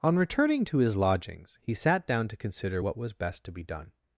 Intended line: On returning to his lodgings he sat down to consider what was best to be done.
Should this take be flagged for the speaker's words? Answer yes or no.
no